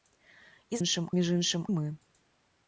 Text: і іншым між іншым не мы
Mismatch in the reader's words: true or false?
false